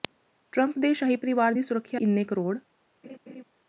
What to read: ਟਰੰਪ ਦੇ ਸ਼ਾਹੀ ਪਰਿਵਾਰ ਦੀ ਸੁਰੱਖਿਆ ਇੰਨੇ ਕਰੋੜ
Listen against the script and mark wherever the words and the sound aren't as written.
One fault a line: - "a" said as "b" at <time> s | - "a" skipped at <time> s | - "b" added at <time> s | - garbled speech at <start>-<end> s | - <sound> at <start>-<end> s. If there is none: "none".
- laugh at 3.0-3.4 s